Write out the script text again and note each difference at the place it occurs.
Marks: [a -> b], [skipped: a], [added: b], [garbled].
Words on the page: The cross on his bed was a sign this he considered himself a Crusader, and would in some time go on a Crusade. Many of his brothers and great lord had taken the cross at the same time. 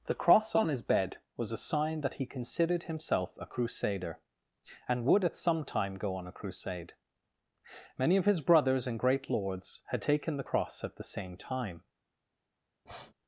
The cross on his bed was a sign [this -> that] he considered himself a Crusader, and would [in -> at] some time go on a Crusade. Many of his brothers and great [lord -> lords] had taken the cross at the same time.